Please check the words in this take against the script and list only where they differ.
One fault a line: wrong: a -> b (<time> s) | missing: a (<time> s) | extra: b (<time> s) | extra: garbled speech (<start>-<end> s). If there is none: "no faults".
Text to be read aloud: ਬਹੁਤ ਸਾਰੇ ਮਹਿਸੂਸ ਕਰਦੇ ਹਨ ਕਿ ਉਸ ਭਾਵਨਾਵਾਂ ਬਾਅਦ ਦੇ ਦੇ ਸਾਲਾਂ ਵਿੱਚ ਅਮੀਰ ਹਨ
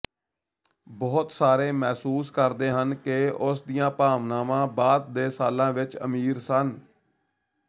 extra: ਦੀਆਂ (3.6 s)
missing: ਦੇ (5.3 s)
wrong: ਹਨ -> ਸਨ (6.4 s)